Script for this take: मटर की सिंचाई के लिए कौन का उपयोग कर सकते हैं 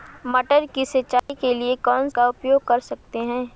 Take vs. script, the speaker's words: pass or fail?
pass